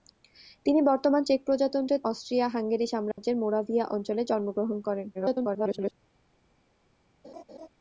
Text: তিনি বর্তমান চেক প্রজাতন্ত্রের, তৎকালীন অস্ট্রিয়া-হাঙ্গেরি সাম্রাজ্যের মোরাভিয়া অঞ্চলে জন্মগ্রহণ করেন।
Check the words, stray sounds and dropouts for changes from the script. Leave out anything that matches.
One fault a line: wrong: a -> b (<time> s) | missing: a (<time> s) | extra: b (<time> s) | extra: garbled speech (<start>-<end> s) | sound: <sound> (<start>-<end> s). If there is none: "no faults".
missing: তৎকালীন (2.0 s)
sound: dropout (3.1-3.2 s)
extra: garbled speech (5.1-5.9 s)
sound: laugh (7.2-7.7 s)